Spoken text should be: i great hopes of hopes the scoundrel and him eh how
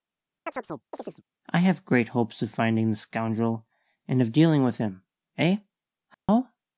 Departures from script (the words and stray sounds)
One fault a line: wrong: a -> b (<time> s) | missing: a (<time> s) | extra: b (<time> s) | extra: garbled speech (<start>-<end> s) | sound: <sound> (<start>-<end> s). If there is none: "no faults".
sound: chirp (0.5-1.2 s)
extra: have (1.6 s)
wrong: hopes -> finding (2.5 s)
extra: of dealing with (4.2 s)
sound: dropout (6.1-6.3 s)